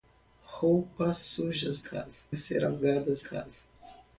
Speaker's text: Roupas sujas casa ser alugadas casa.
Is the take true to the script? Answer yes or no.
yes